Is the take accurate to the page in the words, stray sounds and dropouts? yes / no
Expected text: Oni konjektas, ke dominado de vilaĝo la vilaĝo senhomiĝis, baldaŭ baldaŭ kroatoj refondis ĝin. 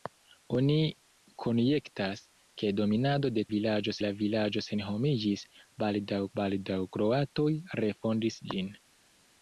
yes